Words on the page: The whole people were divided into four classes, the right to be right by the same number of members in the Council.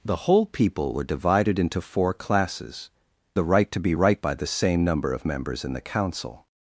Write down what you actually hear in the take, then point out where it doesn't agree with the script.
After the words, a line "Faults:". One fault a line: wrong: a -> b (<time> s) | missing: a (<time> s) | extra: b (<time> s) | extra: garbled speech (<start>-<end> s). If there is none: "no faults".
The whole people were divided into four classes, the right to be right by the same number of members in the Council.
Faults:
no faults